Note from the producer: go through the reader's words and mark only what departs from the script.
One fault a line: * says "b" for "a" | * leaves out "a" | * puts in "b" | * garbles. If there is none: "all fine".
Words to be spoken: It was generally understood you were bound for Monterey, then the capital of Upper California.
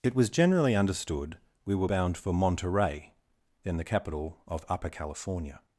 * says "we" for "you"